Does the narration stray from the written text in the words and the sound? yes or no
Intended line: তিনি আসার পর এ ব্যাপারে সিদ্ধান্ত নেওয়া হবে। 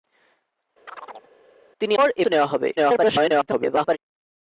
yes